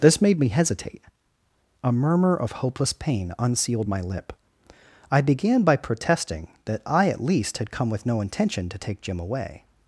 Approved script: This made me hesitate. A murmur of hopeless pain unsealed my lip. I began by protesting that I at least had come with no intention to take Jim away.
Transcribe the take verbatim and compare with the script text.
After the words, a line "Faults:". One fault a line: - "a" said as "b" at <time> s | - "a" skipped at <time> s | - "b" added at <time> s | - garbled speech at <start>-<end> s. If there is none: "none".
This made me hesitate. A murmur of hopeless pain unsealed my lip. I began by protesting that I at least had come with no intention to take Jim away.
Faults:
none